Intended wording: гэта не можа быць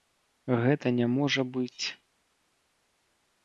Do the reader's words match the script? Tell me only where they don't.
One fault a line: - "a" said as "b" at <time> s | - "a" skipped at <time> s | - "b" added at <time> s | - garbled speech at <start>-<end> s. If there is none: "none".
none